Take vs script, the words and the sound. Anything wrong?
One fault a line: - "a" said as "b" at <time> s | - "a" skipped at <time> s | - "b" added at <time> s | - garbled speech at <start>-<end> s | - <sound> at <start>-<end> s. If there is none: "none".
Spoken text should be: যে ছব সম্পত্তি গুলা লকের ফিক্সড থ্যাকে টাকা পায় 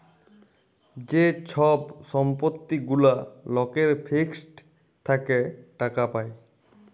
none